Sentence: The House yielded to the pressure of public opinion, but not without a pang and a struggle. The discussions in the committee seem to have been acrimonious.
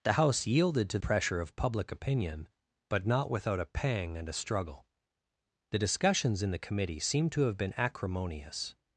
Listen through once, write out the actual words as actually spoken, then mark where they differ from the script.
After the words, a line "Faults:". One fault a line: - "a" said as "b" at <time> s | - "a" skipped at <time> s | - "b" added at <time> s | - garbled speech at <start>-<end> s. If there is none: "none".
The House yielded to pressure of public opinion, but not without a pang and a struggle. The discussions in the committee seem to have been acrimonious.
Faults:
- "the" skipped at 1.0 s